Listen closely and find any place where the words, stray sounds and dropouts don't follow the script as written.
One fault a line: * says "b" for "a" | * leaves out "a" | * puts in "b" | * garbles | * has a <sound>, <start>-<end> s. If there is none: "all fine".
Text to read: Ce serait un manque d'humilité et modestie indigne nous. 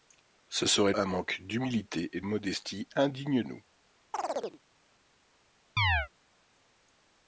* has a chirp, 4.1-4.6 s
* has a chirp, 5.8-6.1 s